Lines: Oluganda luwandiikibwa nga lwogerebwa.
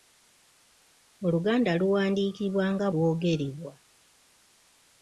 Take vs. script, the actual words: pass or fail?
pass